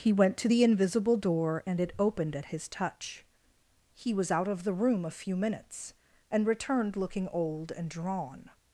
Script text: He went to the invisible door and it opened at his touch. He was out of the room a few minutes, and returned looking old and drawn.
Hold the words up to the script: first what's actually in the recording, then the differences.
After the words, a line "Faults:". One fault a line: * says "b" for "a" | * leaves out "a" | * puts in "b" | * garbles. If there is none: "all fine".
He went to the invisible door and it opened at his touch. He was out of the room a few minutes, and returned looking old and drawn.
Faults:
all fine